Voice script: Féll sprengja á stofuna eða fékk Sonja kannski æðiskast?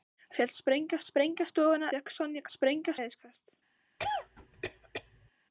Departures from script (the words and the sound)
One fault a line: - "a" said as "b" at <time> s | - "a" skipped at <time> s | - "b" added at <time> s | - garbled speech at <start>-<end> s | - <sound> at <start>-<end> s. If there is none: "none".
- "sprengja" added at 1.0 s
- "eða" skipped at 1.9 s
- "kannski" said as "sprengja" at 2.5 s
- cough at 4.0-5.3 s